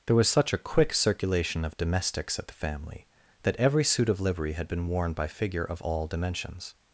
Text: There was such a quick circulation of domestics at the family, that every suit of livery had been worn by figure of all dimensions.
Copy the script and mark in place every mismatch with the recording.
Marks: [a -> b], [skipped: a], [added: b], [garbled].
There was such a quick circulation of domestics at the family, that every suit of livery had been worn by figure of all dimensions.